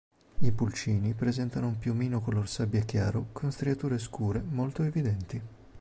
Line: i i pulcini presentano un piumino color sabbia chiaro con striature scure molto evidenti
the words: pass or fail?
fail